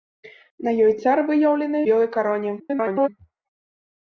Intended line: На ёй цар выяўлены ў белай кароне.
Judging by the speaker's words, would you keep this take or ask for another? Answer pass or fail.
fail